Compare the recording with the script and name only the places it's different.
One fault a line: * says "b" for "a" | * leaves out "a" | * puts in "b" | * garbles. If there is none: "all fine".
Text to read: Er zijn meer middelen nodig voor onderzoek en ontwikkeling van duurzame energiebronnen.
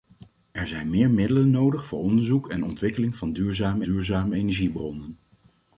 * puts in "duurzame"